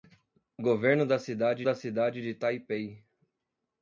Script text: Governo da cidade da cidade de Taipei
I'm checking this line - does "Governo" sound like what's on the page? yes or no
yes